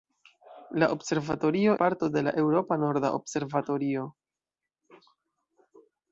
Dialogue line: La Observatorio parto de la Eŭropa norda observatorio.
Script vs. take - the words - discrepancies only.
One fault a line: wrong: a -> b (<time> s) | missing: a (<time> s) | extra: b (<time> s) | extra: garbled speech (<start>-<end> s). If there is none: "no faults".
no faults